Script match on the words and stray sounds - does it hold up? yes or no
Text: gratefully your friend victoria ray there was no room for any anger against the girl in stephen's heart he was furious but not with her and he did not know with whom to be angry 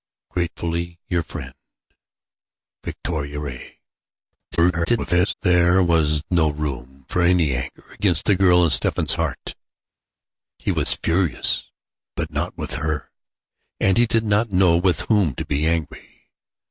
no